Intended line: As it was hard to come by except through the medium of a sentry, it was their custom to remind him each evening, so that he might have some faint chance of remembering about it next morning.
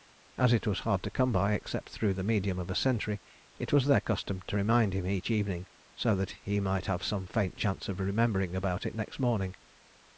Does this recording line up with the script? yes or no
yes